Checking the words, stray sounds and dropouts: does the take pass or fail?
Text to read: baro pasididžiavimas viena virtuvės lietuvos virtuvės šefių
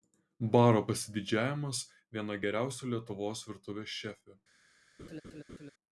fail